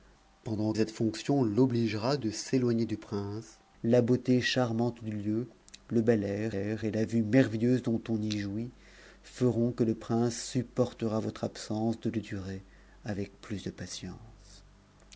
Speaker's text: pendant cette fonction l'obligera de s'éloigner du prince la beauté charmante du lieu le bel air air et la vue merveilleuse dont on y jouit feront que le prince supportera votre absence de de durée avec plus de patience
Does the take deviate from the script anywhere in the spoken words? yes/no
no